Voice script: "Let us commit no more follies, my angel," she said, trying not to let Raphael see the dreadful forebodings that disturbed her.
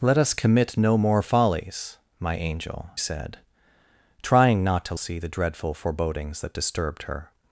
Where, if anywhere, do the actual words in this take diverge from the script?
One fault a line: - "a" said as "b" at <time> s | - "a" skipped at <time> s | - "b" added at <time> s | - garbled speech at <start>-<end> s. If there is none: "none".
- "she" skipped at 2.9 s
- "let Raphael" skipped at 4.9 s